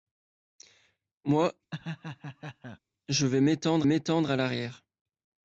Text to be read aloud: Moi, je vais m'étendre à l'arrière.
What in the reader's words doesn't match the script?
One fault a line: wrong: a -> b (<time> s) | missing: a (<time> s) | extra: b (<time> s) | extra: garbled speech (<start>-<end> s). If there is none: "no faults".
extra: m'étendre (3.8 s)